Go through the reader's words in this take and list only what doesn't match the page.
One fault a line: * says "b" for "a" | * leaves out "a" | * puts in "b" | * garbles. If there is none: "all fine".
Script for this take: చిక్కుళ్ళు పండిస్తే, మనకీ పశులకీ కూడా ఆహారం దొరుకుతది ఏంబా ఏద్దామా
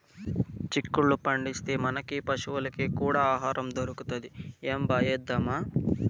all fine